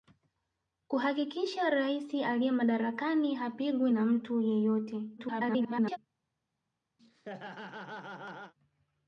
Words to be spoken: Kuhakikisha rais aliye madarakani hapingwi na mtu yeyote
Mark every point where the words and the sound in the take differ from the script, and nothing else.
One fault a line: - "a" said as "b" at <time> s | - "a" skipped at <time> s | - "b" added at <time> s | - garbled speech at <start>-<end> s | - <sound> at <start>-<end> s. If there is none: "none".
- garbled speech at 5.2-6.0 s
- laugh at 7.0-8.5 s